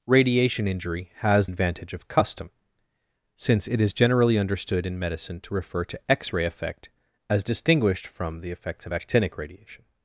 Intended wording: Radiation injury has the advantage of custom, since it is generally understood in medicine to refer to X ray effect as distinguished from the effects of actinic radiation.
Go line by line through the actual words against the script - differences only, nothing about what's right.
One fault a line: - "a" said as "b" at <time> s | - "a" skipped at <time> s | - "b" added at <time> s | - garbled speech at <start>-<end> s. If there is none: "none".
- "the" skipped at 1.5 s